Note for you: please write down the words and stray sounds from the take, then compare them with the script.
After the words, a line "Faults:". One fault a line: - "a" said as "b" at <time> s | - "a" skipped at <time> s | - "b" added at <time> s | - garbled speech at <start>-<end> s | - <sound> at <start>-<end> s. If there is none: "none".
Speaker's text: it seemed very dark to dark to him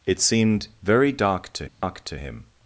it seemed very dark to dark to him
Faults:
- dropout at 1.7-1.8 s